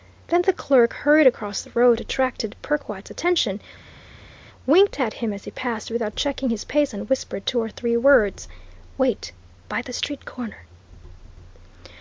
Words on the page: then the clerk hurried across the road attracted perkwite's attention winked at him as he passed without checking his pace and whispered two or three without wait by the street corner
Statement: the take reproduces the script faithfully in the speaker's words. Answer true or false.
false